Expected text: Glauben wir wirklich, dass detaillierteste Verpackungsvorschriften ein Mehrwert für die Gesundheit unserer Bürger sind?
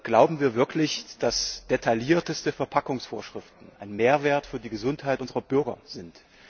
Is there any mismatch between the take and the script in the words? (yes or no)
no